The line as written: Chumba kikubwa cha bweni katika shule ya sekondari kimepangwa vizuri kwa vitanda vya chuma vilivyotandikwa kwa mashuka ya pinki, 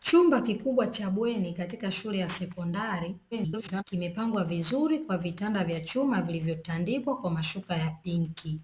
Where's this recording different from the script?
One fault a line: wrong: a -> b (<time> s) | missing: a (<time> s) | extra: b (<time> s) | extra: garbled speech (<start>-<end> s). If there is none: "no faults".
extra: garbled speech (3.3-3.8 s)